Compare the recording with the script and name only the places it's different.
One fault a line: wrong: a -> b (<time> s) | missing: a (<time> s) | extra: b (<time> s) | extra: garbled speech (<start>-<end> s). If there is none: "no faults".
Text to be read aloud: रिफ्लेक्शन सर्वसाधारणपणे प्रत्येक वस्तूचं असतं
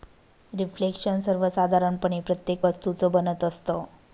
extra: बनत (3.1 s)